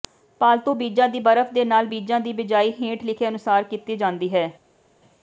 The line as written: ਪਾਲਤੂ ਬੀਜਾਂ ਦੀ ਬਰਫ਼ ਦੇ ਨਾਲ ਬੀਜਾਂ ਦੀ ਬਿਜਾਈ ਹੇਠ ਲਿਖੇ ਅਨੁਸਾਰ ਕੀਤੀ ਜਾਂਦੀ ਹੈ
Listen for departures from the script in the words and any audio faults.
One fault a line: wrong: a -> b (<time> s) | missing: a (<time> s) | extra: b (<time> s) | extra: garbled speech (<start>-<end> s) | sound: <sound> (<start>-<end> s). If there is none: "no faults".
no faults